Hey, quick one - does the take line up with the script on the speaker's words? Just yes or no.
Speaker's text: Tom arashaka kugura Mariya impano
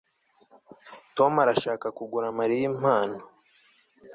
yes